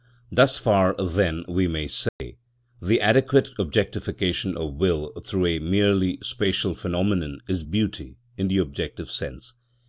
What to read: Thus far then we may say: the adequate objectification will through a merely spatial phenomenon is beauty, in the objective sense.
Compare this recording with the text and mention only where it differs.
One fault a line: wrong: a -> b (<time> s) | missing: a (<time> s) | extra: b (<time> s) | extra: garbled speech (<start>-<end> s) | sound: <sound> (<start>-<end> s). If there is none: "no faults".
sound: dropout (2.1-2.2 s)
extra: of (4.6 s)